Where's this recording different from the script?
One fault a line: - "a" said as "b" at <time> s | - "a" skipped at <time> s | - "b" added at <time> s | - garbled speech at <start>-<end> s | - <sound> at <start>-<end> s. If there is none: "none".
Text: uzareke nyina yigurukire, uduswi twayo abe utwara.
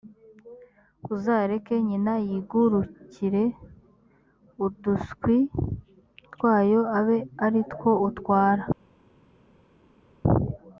- "ari two" added at 7.4 s